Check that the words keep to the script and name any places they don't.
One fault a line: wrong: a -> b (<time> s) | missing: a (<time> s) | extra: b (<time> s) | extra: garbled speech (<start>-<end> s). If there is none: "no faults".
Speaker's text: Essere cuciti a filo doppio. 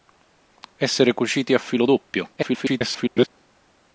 extra: garbled speech (2.4-3.3 s)